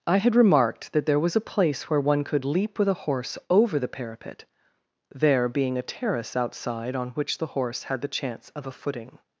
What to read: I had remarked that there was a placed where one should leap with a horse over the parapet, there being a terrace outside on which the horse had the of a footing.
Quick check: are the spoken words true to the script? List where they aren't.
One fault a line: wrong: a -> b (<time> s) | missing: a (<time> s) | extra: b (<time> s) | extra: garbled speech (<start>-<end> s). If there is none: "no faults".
wrong: placed -> place (1.4 s)
wrong: should -> could (2.2 s)
extra: chance (8.1 s)